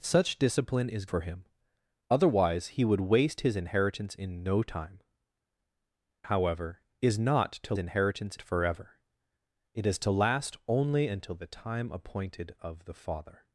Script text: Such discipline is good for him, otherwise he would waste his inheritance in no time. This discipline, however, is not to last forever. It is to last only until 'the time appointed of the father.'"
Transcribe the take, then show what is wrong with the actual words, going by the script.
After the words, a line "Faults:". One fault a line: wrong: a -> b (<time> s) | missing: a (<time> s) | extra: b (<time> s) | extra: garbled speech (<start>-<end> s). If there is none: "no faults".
Such discipline is for him, otherwise he would waste his inheritance in no time. However, is not to inheritance forever. It is to last only until 'the time appointed of the father.'"
Faults:
missing: good (1.1 s)
missing: This discipline (5.0 s)
wrong: last -> inheritance (7.8 s)